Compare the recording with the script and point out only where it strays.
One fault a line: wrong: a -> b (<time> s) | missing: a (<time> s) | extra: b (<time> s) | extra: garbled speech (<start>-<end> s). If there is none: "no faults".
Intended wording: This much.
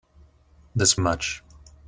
no faults